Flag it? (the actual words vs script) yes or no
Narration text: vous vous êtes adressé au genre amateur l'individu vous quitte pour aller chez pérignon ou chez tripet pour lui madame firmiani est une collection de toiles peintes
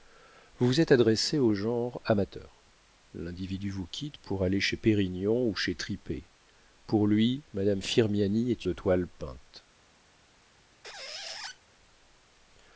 yes